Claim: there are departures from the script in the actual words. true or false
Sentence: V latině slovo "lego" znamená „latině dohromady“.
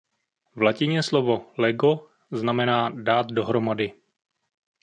true